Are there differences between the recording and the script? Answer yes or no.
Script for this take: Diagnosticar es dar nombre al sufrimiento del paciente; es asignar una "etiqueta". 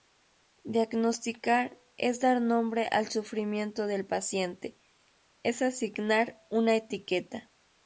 no